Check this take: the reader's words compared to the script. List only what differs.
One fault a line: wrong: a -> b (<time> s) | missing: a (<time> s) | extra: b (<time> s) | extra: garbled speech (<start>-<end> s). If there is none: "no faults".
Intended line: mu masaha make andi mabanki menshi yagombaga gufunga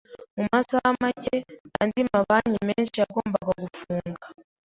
no faults